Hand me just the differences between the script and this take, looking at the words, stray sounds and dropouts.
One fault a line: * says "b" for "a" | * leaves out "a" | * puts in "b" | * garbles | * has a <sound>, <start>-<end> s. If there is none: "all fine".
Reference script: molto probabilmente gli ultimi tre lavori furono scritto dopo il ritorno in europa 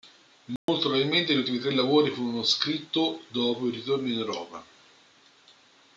* has a dropout, 0.6-0.7 s